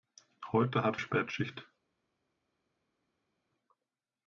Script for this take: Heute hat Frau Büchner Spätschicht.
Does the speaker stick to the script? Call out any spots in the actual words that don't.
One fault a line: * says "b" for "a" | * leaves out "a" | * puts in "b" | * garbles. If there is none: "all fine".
* leaves out "Frau Büchner"